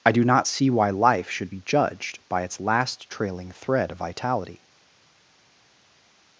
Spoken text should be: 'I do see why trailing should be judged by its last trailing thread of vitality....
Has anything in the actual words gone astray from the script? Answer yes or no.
yes